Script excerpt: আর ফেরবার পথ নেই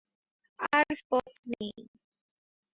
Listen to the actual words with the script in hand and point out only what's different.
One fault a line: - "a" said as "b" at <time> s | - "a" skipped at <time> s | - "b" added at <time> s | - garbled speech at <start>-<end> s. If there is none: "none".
- "ফেরবার" skipped at 0.9 s